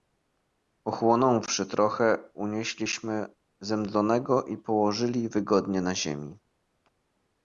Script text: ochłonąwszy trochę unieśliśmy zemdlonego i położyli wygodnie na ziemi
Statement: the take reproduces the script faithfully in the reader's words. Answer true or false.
true